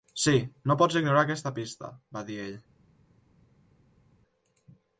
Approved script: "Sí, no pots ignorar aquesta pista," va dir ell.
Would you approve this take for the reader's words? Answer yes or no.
yes